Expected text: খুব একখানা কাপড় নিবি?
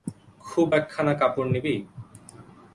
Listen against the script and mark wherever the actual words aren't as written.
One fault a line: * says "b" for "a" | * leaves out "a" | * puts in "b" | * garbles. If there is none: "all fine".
all fine